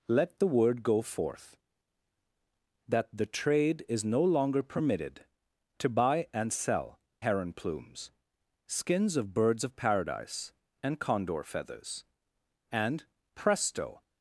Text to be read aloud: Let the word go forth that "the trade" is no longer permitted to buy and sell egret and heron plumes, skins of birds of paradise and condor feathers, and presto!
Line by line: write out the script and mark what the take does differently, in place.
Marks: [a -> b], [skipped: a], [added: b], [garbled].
Let the word go forth that "the trade" is no longer permitted to buy and sell [skipped: egret and] heron plumes, skins of birds of paradise and condor feathers, and presto!